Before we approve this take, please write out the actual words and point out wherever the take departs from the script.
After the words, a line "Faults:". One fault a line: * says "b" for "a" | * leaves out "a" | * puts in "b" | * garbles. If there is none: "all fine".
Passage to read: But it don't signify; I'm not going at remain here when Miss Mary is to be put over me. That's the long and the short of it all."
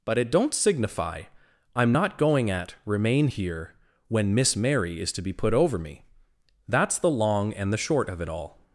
But it don't signify; I'm not going at remain here when Miss Mary is to be put over me. That's the long and the short of it all."
Faults:
all fine